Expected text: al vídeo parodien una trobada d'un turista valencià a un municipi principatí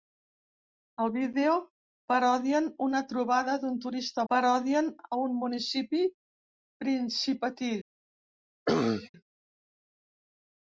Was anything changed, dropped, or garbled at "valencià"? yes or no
yes